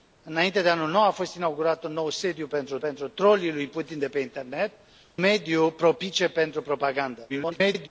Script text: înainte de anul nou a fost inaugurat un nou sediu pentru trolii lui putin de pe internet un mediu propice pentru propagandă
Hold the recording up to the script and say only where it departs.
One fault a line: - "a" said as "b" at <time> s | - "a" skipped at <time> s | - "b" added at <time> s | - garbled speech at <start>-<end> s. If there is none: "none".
- "pentru" added at 2.8 s
- "un" skipped at 4.7 s
- garbled speech at 7.3-7.9 s